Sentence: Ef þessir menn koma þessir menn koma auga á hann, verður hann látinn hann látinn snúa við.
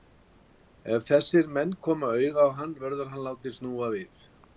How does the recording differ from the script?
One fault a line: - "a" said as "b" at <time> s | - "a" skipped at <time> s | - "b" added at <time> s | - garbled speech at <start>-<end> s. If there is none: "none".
- "þessir menn koma" skipped at 2.1 s
- "hann látinn" skipped at 3.6 s